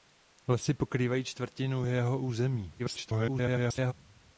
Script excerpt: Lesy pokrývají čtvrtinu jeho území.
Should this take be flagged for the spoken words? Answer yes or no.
yes